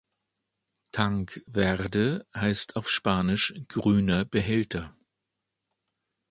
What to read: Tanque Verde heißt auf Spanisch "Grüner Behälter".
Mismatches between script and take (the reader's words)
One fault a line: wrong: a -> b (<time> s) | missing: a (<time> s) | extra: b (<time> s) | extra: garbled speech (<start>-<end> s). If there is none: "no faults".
no faults